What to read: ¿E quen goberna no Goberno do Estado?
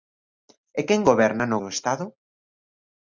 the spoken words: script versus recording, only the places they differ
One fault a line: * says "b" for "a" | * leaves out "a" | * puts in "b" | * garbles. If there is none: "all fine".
* leaves out "Goberno"